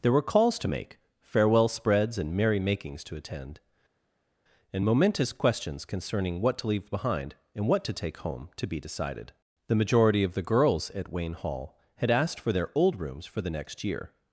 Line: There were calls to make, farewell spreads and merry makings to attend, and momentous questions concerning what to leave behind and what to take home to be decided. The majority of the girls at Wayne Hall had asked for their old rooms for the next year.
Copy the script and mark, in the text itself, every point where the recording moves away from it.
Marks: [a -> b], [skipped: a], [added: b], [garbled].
There were calls to make, farewell spreads and merry makings to attend, and momentous questions concerning what to leave behind and what to take home to be decided. The majority of the girls at Wayne Hall had asked for their old rooms for the next year.